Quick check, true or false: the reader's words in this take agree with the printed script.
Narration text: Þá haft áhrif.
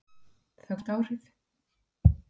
true